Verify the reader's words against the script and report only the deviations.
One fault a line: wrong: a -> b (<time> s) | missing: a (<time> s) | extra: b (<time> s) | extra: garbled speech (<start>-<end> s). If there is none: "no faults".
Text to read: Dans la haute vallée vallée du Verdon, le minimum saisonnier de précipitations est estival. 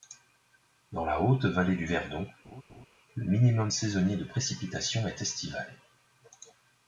missing: vallée (1.8 s)